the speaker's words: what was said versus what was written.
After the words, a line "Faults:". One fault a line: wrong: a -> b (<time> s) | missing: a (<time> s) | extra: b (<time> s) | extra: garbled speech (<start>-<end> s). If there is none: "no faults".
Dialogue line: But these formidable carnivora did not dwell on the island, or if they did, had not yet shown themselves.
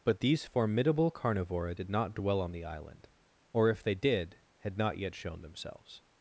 But these formidable carnivora did not dwell on the island, or if they did, had not yet shown themselves.
Faults:
no faults